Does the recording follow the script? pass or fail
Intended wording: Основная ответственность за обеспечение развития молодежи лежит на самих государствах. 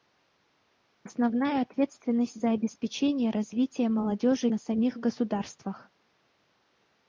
fail